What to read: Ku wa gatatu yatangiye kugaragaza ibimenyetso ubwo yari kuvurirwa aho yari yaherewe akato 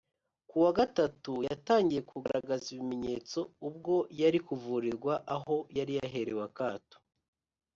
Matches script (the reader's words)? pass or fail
pass